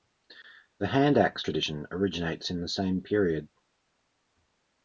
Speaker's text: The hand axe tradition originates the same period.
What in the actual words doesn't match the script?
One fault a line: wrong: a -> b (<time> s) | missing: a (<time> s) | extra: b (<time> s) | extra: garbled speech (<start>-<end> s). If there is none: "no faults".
extra: in (2.5 s)